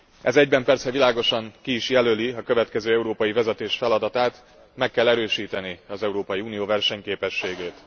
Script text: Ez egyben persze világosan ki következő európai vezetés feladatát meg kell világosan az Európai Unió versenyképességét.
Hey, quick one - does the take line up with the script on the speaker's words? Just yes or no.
no